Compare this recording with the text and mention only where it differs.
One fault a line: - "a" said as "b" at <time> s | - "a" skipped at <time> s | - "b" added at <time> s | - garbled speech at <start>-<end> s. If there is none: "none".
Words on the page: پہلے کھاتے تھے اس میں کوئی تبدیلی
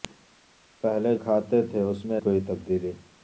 none